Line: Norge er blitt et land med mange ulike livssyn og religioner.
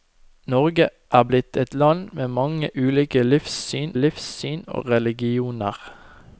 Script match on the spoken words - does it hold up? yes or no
no